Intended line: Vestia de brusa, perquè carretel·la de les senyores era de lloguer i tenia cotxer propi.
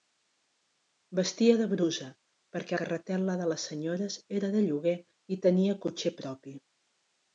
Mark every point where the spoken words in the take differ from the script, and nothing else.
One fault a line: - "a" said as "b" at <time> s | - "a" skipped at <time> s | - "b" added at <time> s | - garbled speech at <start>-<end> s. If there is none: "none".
none